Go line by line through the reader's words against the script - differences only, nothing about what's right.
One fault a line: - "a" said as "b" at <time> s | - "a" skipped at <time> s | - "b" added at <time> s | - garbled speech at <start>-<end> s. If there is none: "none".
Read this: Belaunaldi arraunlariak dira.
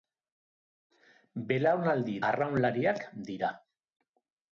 none